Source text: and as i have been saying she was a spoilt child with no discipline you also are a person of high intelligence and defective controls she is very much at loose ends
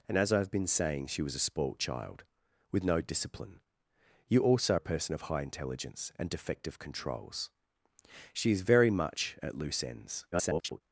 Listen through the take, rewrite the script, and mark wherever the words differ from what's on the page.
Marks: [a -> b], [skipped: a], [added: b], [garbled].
and as i have been saying she was a spoilt child with no discipline you also [skipped: are] a person of high intelligence and defective controls she is very much at loose ends [garbled]